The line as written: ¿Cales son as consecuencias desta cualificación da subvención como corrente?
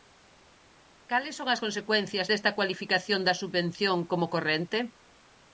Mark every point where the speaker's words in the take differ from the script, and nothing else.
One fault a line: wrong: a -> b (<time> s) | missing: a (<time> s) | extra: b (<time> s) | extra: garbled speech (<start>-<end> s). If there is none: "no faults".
no faults